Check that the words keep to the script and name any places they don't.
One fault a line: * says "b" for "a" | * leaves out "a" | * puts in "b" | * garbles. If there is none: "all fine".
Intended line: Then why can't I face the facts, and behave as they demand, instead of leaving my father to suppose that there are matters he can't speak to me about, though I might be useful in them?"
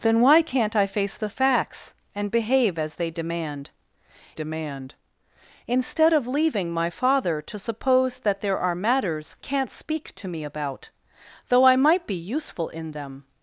* puts in "demand"
* leaves out "he"